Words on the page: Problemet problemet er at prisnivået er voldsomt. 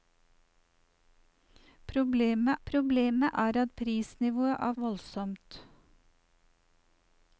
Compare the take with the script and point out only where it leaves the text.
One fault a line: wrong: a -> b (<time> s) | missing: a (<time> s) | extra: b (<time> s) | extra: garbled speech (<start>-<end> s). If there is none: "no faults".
no faults